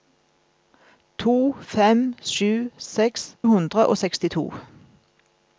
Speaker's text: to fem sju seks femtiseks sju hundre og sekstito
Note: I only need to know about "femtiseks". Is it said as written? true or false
false